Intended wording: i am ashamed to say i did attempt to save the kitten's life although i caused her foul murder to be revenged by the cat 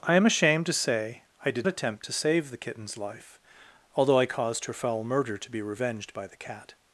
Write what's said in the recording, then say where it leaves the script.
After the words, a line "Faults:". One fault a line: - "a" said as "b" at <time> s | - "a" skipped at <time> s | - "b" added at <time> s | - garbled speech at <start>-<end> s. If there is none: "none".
i am ashamed to say i did attempt to save the kitten's life although i caused her foul murder to be revenged by the cat
Faults:
none